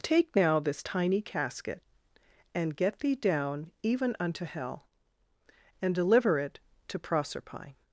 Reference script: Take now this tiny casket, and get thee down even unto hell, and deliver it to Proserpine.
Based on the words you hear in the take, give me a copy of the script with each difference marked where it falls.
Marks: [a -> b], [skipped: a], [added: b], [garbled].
Take now this tiny casket, and get thee down even unto hell, and deliver it to Proserpine.